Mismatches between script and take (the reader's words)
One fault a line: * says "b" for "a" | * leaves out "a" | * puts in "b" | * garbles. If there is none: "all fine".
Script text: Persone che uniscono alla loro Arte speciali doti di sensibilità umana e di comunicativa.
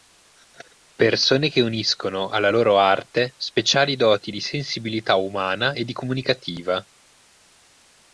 all fine